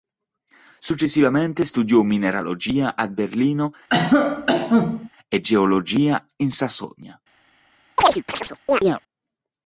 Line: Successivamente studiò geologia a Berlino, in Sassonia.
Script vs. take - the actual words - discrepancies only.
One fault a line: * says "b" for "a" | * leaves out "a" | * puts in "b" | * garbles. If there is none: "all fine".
* says "mineralogia" for "geologia"
* puts in "e geologia"